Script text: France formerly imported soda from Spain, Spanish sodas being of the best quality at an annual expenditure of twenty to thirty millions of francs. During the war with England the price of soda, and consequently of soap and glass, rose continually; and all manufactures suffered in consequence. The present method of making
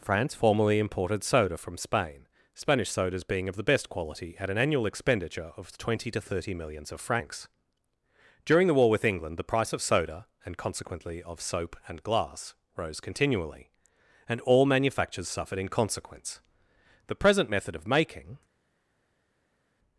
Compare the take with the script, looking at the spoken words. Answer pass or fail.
pass